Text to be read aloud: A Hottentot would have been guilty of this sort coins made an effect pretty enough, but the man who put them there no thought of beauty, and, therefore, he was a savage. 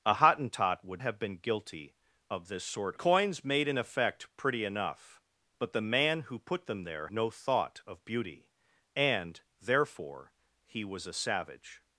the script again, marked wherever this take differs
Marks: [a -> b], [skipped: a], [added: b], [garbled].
A Hottentot would have been guilty of this sort coins made an effect pretty enough, but the man who put them there no thought of beauty, and, therefore, he was a savage.